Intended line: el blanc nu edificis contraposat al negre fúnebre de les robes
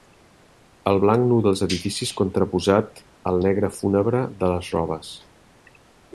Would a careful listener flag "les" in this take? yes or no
no